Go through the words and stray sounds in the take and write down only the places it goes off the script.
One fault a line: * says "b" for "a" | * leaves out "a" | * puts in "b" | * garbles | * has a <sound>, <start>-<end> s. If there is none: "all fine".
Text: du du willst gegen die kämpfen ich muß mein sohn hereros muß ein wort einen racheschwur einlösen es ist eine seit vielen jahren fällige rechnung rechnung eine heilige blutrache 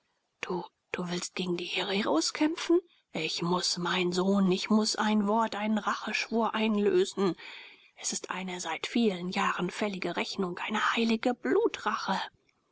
* puts in "hereros"
* says "ich" for "hereros"
* leaves out "rechnung"